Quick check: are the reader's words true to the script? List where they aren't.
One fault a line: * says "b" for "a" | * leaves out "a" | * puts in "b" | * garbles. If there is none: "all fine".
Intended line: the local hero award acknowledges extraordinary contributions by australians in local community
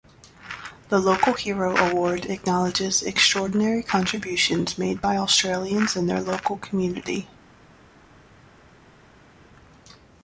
* puts in "made"
* puts in "their"